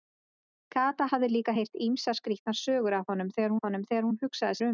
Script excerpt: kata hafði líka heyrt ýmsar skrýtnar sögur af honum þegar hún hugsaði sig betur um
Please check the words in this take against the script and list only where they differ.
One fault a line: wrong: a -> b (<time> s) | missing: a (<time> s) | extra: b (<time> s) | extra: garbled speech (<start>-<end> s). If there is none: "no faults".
extra: af honum þegar (3.6 s)
missing: sig betur (4.6 s)